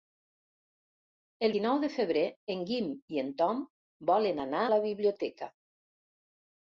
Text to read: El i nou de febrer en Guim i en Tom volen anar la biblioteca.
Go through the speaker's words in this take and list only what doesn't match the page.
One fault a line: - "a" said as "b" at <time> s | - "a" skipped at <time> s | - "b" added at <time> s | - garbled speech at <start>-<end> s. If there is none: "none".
none